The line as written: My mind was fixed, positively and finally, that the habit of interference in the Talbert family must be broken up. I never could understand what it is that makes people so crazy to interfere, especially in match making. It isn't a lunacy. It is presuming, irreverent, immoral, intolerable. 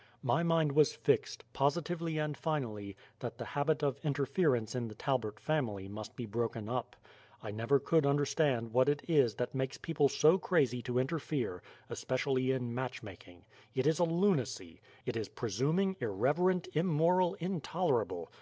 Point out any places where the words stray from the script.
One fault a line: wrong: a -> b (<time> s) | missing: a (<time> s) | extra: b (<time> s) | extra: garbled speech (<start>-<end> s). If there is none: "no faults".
wrong: isn't -> is (13.8 s)